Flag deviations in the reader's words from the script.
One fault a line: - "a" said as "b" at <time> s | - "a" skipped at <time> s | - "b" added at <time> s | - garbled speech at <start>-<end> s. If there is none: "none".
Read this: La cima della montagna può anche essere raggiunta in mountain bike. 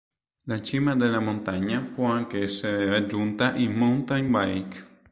none